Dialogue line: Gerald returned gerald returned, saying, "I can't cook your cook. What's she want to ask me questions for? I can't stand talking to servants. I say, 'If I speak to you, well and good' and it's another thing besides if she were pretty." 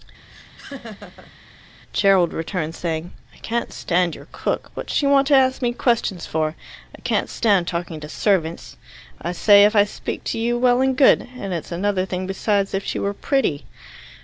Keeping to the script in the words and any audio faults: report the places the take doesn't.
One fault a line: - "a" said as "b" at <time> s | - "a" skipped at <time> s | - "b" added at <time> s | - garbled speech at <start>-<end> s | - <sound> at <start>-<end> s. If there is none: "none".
- laugh at 0.3-1.3 s
- "gerald returned" skipped at 2.7 s
- "cook" said as "stand" at 3.7 s